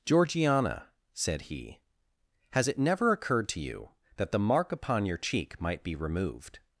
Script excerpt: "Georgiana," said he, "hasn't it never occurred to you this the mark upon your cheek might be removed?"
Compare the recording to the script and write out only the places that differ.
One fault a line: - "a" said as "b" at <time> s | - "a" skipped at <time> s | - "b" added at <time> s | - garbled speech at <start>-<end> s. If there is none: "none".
- "hasn't" said as "has" at 2.5 s
- "this" said as "that" at 4.2 s